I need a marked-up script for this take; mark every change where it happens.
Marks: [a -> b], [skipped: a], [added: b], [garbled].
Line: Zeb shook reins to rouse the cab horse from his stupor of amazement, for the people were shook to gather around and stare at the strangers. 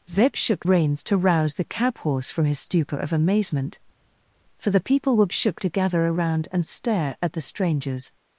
Zeb shook reins to rouse the cab horse from his stupor of amazement, for the people were shook to gather around and stare at the strangers.